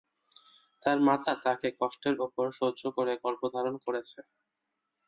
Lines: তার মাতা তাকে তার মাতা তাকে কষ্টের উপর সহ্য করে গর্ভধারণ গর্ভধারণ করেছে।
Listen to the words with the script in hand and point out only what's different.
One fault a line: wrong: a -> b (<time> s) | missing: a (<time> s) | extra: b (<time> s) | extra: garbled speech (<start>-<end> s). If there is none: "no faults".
missing: তার মাতা তাকে (1.7 s)
missing: গর্ভধারণ (3.8 s)